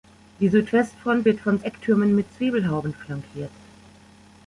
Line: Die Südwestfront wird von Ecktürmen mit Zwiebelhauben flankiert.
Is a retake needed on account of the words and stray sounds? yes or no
no